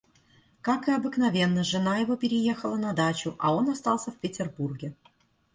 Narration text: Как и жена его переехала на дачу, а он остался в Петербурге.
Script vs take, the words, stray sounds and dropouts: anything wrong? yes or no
yes